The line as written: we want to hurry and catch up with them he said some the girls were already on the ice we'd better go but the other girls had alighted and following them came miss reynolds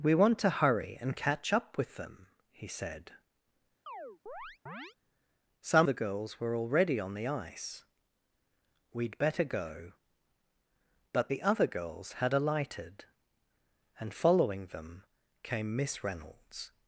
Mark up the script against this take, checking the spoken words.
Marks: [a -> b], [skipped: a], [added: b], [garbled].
we want to hurry and catch up with them he said some the girls were already on the ice we'd better go but the other girls had alighted and following them came miss reynolds